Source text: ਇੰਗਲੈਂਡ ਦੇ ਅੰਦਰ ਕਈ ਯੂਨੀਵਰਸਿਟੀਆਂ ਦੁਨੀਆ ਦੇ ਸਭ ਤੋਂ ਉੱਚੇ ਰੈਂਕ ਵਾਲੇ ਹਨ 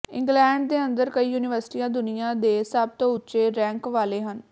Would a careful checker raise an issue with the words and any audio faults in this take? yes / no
no